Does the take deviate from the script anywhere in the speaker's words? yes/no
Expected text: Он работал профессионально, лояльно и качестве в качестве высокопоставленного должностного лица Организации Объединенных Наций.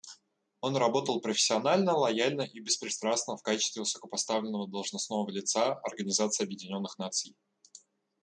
yes